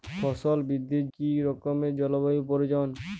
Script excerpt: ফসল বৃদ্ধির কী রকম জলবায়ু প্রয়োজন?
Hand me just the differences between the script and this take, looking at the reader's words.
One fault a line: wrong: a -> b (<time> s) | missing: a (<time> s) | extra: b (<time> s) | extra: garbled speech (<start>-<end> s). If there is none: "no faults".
no faults